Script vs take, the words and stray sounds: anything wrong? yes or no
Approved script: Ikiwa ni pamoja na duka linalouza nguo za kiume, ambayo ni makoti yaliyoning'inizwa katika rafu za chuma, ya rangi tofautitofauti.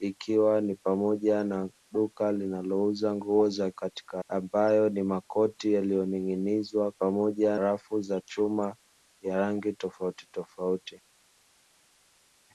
yes